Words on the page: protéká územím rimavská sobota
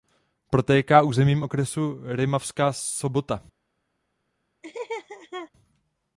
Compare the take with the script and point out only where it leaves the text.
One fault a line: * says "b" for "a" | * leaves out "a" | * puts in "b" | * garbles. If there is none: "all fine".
* puts in "okresu"